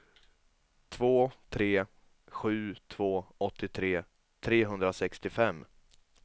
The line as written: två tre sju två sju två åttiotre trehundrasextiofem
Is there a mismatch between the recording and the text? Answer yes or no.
yes